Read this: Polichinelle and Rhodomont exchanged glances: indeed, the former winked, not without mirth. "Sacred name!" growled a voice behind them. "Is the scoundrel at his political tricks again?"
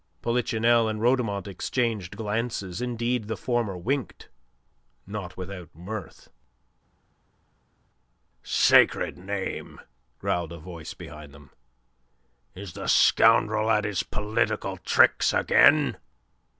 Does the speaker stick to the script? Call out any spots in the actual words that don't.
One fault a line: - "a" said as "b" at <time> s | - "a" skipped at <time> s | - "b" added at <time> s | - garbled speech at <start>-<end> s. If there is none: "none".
none